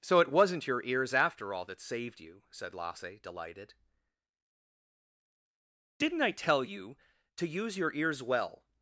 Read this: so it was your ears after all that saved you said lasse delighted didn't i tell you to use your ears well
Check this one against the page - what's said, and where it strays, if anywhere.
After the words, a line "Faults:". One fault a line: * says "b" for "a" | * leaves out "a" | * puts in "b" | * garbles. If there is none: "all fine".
so it wasn't your ears after all that saved you said lasse delighted didn't i tell you to use your ears well
Faults:
* says "wasn't" for "was"